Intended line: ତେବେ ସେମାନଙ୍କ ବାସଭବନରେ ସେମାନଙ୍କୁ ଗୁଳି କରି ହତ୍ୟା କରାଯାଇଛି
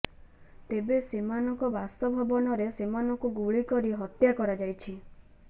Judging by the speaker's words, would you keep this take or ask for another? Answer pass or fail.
pass